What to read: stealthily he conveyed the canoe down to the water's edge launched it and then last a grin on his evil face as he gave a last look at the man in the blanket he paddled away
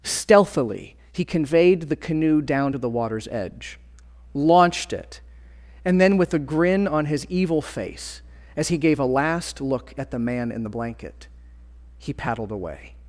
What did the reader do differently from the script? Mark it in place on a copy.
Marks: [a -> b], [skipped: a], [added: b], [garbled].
stealthily he conveyed the canoe down to the water's edge launched it and then [last -> with] a grin on his evil face as he gave a last look at the man in the blanket he paddled away